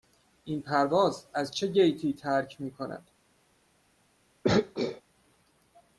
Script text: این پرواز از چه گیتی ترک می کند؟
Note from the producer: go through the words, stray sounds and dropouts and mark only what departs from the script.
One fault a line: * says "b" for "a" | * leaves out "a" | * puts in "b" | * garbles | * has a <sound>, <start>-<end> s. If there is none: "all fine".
* has a throat clearing, 4.4-5.0 s